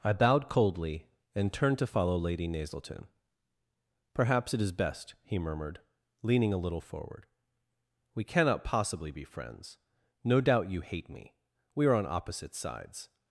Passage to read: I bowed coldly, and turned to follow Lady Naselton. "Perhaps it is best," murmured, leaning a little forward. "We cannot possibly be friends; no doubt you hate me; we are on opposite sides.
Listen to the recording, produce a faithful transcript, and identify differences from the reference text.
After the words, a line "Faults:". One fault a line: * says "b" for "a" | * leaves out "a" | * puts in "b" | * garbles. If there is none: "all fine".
I bowed coldly, and turned to follow Lady Naselton. "Perhaps it is best," he murmured, leaning a little forward. "We cannot possibly be friends; no doubt you hate me; we are on opposite sides.
Faults:
* puts in "he"